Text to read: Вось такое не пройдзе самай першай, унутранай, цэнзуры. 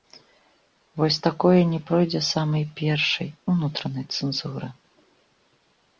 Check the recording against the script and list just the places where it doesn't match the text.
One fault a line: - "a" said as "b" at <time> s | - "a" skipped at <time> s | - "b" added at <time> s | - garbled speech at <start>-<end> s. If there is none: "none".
none